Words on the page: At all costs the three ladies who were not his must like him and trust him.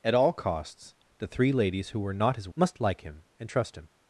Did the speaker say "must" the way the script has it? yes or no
yes